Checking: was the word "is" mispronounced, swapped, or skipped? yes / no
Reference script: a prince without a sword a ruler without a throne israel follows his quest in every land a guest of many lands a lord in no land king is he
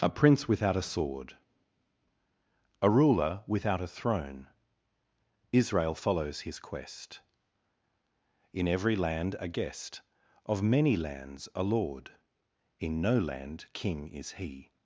no